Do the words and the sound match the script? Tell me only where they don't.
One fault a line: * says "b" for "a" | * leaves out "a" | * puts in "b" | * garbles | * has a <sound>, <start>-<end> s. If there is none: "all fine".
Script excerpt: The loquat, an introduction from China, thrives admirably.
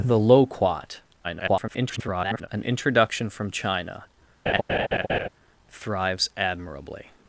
* garbles
* has a laugh, 4.5-5.3 s